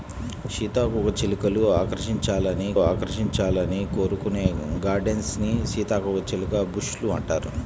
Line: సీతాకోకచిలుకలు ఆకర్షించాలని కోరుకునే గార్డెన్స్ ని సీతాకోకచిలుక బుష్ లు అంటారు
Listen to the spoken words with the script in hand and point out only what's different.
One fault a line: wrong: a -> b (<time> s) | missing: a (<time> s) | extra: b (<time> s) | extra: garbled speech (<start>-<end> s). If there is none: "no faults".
extra: ఆకర్షించాలని (2.8 s)